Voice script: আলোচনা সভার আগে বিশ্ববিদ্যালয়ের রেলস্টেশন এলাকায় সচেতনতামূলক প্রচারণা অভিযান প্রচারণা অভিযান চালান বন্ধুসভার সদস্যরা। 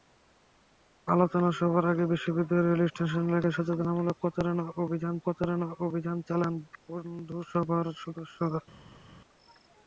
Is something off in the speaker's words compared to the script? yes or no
no